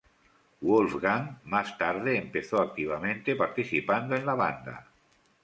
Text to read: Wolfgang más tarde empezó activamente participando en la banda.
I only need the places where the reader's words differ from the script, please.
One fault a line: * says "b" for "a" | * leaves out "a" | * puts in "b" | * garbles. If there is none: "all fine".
all fine